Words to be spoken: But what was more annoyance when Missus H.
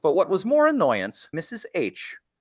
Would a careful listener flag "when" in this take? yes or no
yes